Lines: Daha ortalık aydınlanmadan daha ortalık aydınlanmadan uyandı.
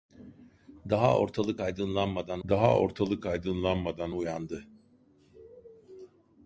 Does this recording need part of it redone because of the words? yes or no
no